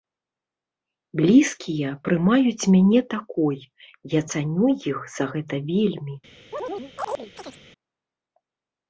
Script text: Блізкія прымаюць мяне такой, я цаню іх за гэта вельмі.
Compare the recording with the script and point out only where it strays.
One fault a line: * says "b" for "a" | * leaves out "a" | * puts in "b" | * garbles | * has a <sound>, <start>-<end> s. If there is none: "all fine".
* has a chirp, 6.5-7.6 s